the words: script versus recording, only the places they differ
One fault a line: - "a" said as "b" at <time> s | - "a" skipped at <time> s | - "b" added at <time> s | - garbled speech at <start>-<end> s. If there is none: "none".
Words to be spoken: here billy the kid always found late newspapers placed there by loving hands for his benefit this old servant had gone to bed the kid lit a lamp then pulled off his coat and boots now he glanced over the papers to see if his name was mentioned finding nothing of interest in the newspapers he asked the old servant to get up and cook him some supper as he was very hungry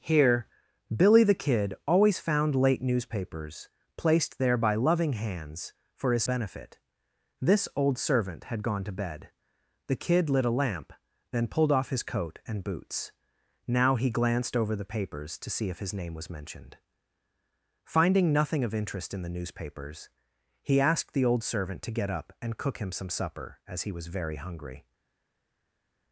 none